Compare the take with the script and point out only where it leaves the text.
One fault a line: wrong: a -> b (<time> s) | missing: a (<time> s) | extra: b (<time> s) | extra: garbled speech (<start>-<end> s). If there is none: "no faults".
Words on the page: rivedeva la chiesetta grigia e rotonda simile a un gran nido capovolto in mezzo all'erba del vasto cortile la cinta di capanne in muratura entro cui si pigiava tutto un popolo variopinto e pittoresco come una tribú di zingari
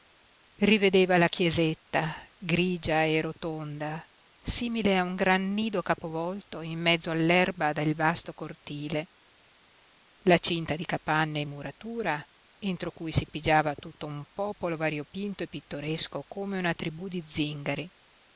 no faults